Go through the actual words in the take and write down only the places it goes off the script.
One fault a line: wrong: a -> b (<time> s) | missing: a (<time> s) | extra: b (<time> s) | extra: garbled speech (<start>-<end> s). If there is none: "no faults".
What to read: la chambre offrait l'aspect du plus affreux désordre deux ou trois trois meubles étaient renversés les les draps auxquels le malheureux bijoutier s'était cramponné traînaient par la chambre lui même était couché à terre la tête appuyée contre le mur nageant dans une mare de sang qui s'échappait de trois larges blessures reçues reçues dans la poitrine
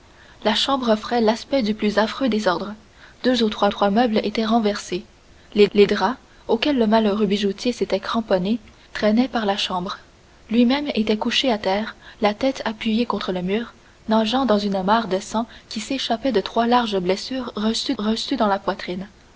no faults